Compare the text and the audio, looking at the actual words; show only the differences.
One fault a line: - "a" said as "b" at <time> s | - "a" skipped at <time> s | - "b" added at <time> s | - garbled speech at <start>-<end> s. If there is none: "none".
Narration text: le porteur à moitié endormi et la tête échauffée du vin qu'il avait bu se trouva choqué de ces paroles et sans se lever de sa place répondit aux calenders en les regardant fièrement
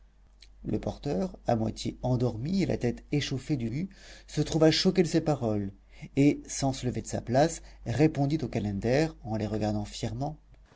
- "vin qu'il avait" skipped at 3.7 s